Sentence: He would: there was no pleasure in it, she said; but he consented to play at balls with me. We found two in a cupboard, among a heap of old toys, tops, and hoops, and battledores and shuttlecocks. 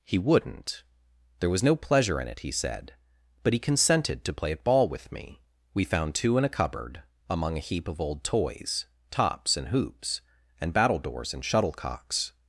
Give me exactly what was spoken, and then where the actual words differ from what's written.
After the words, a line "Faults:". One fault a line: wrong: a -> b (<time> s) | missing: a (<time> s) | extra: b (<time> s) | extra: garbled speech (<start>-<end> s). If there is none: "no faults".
He wouldn't: there was no pleasure in it, he said; but he consented to play at ball with me. We found two in a cupboard, among a heap of old toys, tops, and hoops, and battledores and shuttlecocks.
Faults:
wrong: would -> wouldn't (0.2 s)
wrong: she -> he (2.4 s)
wrong: balls -> ball (4.6 s)